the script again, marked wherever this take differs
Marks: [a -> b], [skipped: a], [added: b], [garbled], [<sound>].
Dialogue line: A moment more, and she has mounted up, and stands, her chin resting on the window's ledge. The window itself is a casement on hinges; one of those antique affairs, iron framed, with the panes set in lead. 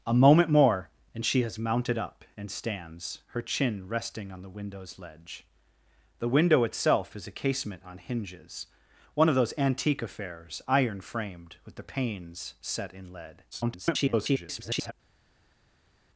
A moment more, and she has mounted up, and stands, her chin resting on the window's ledge. The window itself is a casement on hinges; one of those antique affairs, iron framed, with the panes set in lead. [garbled]